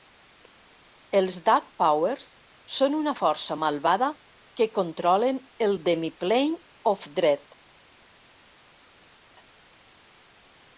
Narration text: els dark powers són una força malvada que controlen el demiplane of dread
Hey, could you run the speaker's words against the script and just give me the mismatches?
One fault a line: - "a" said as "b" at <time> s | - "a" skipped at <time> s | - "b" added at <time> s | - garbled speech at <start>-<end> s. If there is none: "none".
none